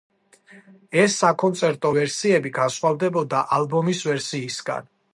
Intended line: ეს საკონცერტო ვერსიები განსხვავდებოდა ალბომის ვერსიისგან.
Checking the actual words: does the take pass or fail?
pass